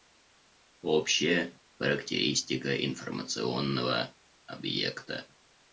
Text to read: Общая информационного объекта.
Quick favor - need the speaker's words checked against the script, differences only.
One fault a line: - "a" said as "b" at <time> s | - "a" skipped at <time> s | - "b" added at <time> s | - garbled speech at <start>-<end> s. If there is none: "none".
- "характеристика" added at 1.8 s